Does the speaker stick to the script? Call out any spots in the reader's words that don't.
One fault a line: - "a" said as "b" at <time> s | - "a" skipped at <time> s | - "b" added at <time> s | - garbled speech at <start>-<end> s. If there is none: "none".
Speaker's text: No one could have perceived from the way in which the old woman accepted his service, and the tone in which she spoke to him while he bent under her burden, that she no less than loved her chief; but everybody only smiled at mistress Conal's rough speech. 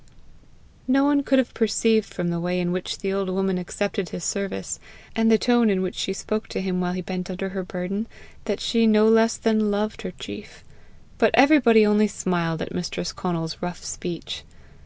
none